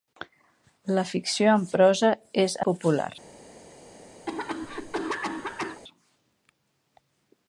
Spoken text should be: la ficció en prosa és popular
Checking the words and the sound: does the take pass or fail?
fail